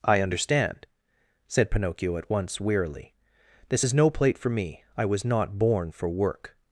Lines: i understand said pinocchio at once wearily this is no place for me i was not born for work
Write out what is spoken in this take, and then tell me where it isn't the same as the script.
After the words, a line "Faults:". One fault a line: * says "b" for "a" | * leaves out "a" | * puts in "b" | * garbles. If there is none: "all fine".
i understand said pinocchio at once wearily this is no plate for me i was not born for work
Faults:
* says "plate" for "place"